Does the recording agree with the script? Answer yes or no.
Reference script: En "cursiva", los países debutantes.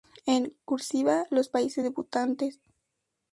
yes